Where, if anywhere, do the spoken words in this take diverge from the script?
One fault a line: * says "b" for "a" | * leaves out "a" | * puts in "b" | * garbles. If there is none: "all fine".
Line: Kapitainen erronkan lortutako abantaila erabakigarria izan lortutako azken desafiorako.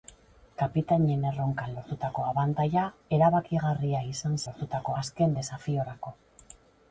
all fine